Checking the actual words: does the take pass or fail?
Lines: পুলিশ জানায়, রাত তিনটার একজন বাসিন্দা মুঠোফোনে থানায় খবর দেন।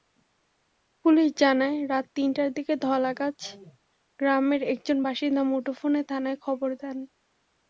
fail